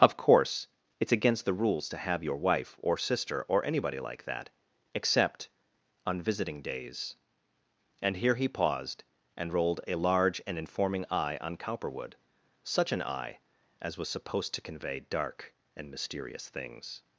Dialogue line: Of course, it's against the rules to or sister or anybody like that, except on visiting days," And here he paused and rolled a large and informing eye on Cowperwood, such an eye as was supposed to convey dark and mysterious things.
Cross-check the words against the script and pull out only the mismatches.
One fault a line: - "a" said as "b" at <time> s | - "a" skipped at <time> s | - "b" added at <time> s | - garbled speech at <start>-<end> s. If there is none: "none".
- "have your wife" added at 2.0 s